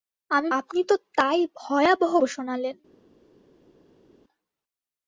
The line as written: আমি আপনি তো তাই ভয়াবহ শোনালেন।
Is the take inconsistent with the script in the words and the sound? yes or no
no